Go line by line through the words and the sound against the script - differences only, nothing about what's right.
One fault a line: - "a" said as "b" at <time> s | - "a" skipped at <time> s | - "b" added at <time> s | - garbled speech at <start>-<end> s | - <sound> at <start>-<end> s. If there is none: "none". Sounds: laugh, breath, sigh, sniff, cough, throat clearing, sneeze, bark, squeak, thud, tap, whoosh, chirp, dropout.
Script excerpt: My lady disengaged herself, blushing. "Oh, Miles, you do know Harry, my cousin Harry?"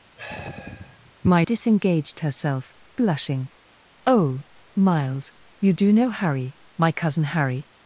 - sigh at 0.2-1.1 s
- "lady" skipped at 1.5 s